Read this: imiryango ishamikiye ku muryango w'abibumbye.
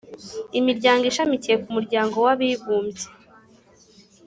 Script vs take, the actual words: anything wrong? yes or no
no